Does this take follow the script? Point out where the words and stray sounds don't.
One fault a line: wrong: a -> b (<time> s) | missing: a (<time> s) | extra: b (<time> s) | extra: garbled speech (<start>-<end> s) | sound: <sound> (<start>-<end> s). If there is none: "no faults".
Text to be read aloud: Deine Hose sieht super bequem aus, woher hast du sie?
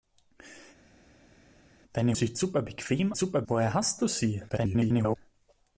missing: Hose (2.2 s)
wrong: aus -> super (3.2 s)
extra: garbled speech (4.5-5.2 s)